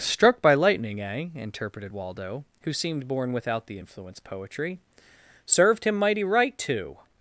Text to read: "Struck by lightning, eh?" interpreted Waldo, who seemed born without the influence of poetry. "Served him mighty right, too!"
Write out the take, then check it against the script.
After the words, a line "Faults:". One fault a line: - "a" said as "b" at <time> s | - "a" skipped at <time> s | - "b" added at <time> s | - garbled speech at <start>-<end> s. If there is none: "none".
"Struck by lightning, eh?" interpreted Waldo, who seemed born without the influence poetry. "Served him mighty right, too!"
Faults:
- "of" skipped at 4.2 s